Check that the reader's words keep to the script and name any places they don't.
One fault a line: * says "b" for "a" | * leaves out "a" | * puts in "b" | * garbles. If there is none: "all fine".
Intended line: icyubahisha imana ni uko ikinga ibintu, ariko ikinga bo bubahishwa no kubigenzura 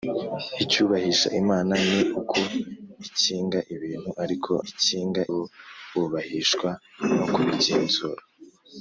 all fine